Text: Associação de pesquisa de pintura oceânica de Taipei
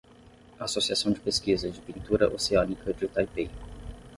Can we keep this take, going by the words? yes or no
yes